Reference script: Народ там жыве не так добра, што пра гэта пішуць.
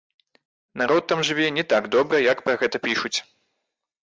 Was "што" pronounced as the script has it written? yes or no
no